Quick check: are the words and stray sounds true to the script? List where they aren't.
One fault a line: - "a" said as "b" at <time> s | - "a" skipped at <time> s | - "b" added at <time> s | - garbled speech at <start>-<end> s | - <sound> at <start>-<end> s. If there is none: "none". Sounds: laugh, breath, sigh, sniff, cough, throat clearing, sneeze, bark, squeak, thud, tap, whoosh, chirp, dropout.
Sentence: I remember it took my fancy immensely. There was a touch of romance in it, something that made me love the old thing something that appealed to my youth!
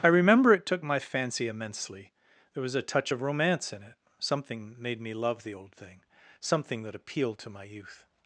- "that" skipped at 4.8 s